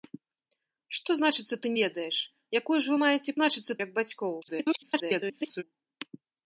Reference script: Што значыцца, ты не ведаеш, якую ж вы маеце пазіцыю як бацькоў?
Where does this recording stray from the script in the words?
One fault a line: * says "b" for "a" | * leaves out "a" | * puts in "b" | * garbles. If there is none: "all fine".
* leaves out "не"
* says "значыцца" for "пазіцыю"
* garbles